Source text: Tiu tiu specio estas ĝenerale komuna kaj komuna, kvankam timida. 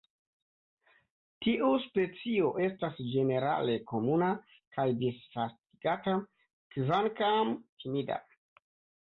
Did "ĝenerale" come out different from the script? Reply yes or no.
no